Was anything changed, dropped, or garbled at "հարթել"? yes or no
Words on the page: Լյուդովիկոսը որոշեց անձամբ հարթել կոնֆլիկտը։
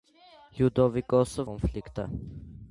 yes